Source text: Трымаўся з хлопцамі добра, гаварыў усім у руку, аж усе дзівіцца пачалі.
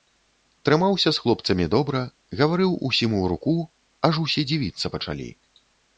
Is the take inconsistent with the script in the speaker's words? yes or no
no